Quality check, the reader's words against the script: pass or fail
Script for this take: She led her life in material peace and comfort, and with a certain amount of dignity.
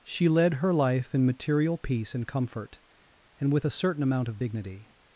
pass